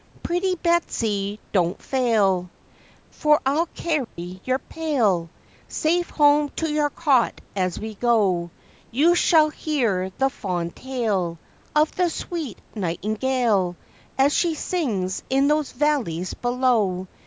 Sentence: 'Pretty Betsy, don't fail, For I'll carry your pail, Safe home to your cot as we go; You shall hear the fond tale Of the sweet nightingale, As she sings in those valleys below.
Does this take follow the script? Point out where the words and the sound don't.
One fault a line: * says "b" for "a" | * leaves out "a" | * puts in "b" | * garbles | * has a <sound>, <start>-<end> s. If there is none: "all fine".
* has a dropout, 4.0-4.2 s